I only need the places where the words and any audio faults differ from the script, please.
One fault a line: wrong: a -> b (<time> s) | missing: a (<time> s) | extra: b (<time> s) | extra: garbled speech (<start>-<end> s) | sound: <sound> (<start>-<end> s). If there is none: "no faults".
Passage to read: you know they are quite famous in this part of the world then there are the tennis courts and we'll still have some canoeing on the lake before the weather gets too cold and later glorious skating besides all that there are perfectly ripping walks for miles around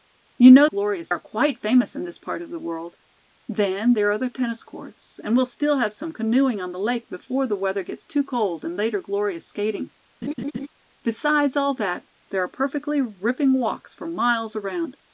wrong: they -> glorious (0.6 s)
sound: laugh (10.2-10.7 s)